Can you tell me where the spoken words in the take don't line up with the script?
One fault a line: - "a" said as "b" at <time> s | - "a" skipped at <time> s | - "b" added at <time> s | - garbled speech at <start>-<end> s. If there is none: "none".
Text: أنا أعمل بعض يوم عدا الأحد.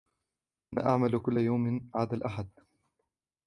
- "بعض" said as "كل" at 1.2 s